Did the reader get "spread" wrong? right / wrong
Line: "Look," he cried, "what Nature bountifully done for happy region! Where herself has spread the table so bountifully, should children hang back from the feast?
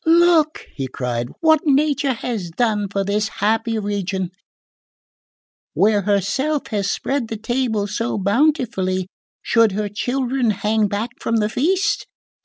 right